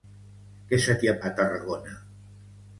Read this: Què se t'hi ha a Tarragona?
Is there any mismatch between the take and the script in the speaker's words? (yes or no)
no